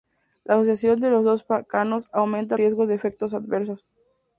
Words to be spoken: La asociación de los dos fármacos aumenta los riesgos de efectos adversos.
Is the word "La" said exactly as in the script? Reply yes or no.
yes